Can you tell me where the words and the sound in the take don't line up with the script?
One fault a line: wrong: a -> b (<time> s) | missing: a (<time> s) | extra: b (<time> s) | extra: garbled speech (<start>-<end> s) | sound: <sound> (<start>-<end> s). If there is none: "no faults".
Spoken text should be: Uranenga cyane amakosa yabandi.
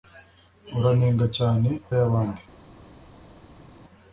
missing: amakosa (1.7 s)